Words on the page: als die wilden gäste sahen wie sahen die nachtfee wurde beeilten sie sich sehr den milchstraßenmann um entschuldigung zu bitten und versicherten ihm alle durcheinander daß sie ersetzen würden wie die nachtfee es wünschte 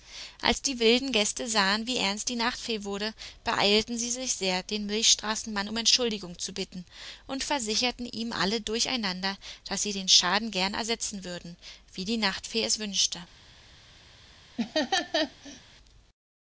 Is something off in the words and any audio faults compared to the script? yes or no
yes